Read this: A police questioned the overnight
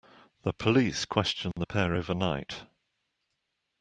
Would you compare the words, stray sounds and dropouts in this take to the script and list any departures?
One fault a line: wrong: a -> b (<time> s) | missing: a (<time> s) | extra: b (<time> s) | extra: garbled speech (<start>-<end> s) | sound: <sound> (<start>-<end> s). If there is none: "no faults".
wrong: A -> The (0.4 s)
sound: dropout (1.5-1.6 s)
extra: pair (1.6 s)